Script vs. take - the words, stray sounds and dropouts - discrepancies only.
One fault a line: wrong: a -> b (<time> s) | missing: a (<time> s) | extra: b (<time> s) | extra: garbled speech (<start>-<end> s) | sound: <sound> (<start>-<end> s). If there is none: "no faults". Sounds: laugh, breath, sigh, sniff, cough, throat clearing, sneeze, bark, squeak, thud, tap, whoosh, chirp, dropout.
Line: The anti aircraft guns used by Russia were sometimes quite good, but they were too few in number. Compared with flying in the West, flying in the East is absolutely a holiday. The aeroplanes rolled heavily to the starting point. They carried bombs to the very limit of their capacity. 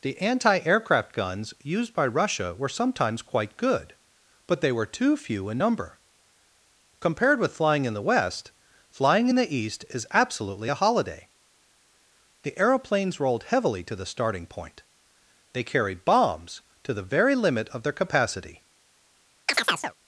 sound: chirp (19.5-19.9 s)